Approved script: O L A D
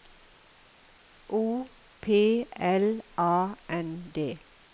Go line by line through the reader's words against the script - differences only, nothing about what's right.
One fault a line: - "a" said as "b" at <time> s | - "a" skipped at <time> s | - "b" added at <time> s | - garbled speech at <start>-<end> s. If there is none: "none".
- "P" added at 2.0 s
- "N" added at 3.7 s